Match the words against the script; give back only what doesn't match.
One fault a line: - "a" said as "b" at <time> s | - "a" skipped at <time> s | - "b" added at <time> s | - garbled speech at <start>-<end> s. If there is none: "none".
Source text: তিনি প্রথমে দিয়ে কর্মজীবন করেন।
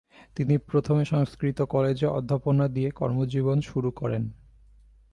- "সংস্কৃত কলেজে অধ্যাপনা" added at 1.0 s
- "শুরু" added at 3.6 s